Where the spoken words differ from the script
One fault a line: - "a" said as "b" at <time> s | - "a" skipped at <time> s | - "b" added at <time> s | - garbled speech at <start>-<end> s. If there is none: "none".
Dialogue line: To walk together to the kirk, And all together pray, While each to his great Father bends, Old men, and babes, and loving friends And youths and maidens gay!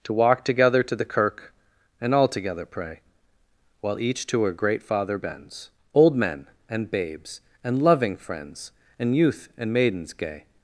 - "his" said as "her" at 4.4 s
- "youths" said as "youth" at 9.2 s